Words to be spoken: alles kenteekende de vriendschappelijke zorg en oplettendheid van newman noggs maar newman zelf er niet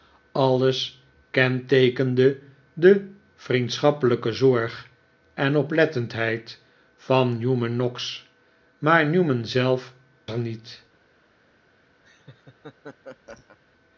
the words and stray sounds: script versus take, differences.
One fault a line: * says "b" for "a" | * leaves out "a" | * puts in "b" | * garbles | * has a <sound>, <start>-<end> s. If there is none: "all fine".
* has a laugh, 12.0-13.6 s